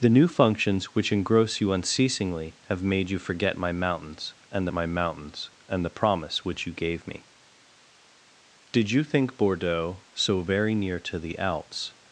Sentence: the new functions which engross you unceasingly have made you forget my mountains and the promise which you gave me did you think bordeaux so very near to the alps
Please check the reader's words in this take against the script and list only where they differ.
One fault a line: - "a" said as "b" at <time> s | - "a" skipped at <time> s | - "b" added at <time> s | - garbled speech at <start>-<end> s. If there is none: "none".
- "my mountains and" added at 4.7 s